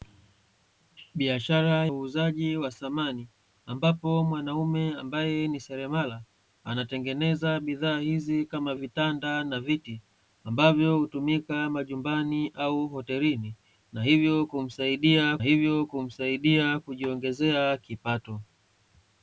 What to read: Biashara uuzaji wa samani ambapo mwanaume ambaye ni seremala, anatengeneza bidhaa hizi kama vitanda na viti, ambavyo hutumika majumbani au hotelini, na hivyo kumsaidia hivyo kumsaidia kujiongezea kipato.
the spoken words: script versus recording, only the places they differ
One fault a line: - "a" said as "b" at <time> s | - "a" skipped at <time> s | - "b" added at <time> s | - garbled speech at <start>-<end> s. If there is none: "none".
none